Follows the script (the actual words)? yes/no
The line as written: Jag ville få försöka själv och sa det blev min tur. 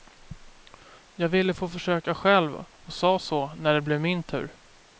no